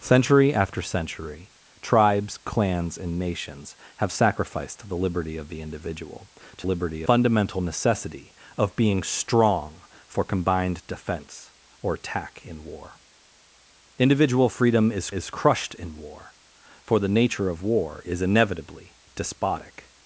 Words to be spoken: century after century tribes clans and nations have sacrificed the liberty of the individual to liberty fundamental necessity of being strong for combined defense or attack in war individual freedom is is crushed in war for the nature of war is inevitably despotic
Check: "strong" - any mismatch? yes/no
no